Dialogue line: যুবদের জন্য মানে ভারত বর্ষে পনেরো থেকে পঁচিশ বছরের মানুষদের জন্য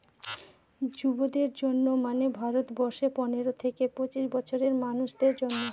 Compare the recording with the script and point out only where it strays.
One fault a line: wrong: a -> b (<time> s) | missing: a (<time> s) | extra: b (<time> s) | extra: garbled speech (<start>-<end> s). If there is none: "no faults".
no faults